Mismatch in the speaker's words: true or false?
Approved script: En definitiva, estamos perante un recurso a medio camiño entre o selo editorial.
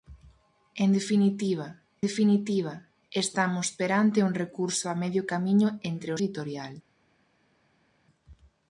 true